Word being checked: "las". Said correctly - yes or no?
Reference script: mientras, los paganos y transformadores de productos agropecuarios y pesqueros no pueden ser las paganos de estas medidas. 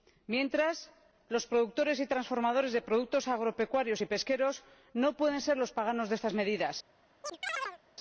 no